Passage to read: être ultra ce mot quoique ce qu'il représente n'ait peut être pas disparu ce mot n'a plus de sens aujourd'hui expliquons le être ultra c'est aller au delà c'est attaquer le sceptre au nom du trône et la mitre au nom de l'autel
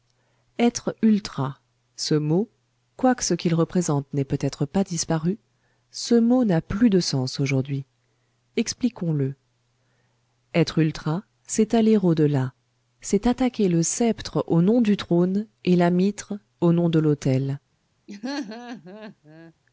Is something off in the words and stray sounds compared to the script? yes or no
yes